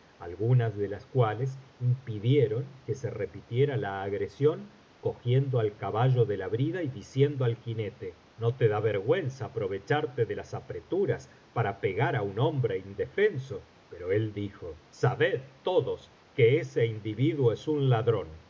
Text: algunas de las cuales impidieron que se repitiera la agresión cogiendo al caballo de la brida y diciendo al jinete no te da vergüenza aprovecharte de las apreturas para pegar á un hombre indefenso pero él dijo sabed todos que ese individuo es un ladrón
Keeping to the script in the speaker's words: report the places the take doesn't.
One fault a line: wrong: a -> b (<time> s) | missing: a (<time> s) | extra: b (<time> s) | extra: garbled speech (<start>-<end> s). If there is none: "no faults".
no faults